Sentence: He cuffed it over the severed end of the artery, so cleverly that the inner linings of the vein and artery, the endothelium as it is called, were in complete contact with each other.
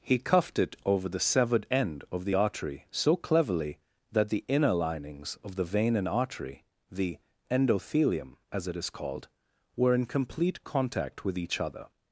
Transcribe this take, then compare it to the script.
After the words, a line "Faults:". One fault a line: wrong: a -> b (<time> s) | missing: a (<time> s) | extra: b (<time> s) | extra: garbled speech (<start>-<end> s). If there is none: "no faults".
He cuffed it over the severed end of the artery, so cleverly that the inner linings of the vein and artery, the endothelium as it is called, were in complete contact with each other.
Faults:
no faults